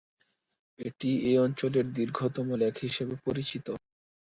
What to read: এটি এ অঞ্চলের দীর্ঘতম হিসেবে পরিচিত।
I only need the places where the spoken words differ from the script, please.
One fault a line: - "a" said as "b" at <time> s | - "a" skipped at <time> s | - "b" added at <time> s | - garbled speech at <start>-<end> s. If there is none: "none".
- "লেক" added at 2.6 s